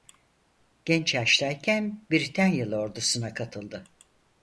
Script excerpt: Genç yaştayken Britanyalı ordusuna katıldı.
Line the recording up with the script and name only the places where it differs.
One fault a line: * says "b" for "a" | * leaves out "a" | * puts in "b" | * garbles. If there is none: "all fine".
all fine